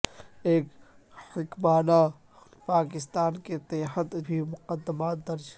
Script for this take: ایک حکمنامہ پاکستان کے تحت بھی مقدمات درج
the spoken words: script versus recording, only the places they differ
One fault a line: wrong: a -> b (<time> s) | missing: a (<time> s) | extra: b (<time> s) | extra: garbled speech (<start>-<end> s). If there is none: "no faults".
no faults